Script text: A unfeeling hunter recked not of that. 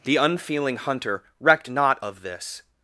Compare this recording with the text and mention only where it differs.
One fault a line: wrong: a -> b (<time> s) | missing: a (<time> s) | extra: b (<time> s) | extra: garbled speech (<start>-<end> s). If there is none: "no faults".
wrong: A -> The (0.0 s)
wrong: that -> this (2.2 s)